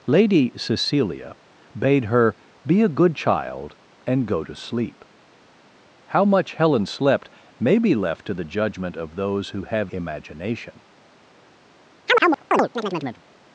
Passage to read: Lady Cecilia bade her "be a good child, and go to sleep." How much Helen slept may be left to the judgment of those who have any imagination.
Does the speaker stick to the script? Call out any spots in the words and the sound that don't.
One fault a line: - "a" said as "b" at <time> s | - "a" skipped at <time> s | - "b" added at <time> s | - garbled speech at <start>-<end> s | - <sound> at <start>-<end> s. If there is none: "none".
- "any" skipped at 9.9 s
- chirp at 12.1-13.2 s